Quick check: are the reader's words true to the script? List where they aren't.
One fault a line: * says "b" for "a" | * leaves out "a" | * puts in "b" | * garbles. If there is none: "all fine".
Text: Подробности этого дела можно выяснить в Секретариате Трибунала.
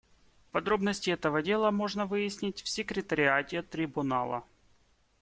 all fine